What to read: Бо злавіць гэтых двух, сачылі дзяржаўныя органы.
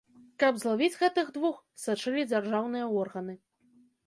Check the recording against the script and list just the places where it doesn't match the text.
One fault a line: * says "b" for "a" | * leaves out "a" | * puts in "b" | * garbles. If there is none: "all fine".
* says "Каб" for "Бо"